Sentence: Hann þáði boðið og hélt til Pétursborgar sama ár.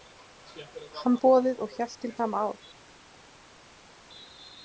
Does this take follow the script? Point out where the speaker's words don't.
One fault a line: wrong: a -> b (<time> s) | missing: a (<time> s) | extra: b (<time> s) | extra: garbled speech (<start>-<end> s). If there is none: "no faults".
missing: þáði (1.2 s)
missing: Pétursborgar (2.1 s)